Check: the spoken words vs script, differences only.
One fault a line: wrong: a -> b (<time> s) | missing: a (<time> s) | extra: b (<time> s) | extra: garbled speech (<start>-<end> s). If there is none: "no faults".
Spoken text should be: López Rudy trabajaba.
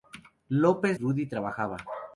no faults